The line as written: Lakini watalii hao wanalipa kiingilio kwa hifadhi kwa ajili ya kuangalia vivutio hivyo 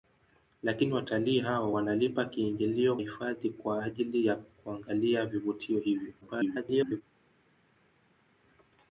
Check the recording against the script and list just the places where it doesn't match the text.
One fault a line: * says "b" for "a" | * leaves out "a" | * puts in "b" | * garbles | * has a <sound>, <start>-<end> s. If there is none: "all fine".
* leaves out "kwa"
* garbles